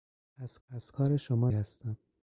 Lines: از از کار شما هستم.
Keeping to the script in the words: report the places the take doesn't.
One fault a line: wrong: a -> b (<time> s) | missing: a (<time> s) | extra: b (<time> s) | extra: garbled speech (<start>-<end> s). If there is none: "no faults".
no faults